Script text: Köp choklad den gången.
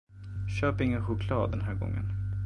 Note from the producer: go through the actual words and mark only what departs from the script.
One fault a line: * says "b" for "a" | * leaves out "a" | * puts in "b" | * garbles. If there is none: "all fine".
* puts in "ingen"
* puts in "här"